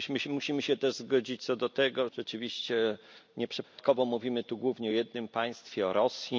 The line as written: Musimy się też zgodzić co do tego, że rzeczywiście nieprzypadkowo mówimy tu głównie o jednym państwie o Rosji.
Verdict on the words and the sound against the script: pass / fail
fail